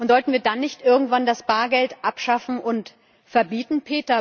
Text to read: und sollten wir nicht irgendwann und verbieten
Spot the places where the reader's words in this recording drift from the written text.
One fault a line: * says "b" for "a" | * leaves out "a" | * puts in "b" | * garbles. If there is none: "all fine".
* puts in "dann"
* puts in "das bargeld abschaffen"